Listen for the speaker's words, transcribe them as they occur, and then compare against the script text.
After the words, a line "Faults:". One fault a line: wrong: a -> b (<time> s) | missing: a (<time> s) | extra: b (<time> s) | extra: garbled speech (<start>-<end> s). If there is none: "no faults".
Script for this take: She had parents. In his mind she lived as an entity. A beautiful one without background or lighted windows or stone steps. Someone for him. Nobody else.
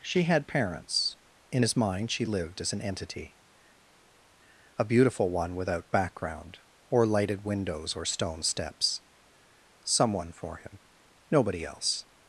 She had parents. In his mind she lived as an entity. A beautiful one without background or lighted windows or stone steps. Someone for him. Nobody else.
Faults:
no faults